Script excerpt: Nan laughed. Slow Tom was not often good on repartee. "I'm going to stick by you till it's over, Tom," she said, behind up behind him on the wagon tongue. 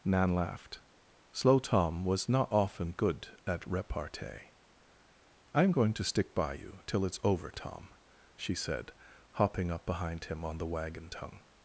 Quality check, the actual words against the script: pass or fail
fail